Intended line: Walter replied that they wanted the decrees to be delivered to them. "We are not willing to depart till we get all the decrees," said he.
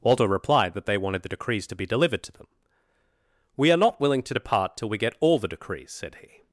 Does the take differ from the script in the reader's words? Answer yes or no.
no